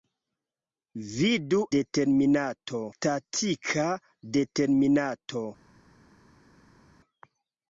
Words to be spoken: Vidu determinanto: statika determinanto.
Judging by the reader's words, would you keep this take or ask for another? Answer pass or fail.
pass